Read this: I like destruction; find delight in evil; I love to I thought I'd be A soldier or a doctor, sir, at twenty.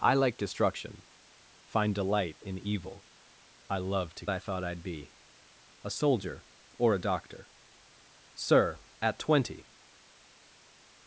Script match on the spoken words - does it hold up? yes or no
yes